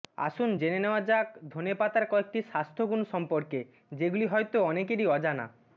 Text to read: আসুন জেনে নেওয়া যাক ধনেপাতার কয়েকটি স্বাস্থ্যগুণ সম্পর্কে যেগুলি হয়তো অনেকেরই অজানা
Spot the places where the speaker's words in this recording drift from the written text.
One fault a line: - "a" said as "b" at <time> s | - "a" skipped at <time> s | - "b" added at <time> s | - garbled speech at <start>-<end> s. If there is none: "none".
none